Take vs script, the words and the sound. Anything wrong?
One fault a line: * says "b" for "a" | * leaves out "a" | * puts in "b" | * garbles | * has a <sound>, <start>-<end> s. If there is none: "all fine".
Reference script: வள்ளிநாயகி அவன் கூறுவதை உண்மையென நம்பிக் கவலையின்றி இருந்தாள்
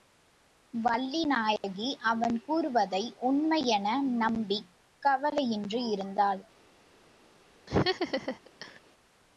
* has a dropout, 1.6-1.6 s
* has a laugh, 7.7-8.8 s